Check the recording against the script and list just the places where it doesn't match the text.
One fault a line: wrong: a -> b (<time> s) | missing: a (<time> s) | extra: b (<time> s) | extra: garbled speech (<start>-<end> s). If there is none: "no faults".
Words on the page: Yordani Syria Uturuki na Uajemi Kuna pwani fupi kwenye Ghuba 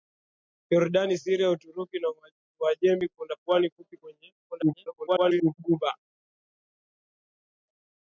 extra: garbled speech (4.5-5.5 s)